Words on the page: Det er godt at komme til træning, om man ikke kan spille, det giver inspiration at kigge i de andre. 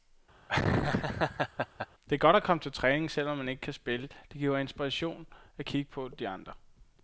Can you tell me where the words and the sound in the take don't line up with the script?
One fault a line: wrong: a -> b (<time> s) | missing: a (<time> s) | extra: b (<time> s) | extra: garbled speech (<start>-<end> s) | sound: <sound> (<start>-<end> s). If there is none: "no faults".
sound: laugh (0.5-1.9 s)
extra: selv (3.1 s)
wrong: i -> på (5.9 s)